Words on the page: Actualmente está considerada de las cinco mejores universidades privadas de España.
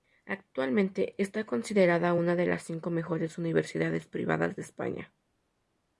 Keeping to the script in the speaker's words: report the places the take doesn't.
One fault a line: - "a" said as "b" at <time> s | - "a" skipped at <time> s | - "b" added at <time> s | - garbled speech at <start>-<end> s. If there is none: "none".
- "una" added at 2.1 s